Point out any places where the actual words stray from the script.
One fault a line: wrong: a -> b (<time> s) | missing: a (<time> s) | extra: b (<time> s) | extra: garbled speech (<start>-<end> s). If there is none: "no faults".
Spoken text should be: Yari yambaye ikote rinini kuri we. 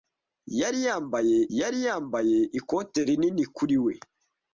extra: yari yambaye (1.6 s)